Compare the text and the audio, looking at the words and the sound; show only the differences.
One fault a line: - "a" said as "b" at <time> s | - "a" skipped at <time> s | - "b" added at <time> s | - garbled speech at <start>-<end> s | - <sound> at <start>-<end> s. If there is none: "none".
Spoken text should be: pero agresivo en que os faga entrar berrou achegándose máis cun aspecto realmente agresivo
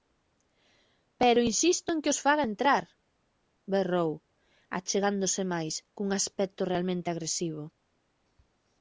- "agresivo" said as "insisto" at 1.5 s